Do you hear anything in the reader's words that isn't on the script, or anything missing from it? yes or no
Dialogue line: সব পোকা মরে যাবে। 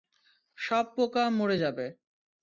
no